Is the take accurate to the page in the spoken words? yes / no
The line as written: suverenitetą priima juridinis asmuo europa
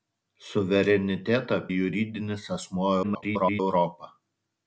no